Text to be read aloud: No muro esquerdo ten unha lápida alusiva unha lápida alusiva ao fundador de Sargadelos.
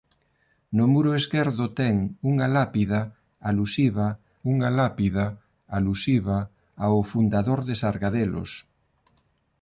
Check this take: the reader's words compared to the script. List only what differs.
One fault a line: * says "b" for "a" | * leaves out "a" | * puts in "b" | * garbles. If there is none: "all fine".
all fine